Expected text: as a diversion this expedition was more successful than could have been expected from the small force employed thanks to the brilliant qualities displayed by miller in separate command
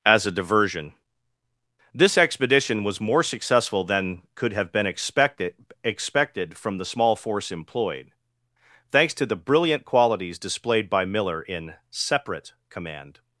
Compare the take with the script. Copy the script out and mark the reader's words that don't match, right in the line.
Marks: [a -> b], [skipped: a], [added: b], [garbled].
as a diversion this expedition was more successful than could have been expected [added: expected] from the small force employed thanks to the brilliant qualities displayed by miller in separate command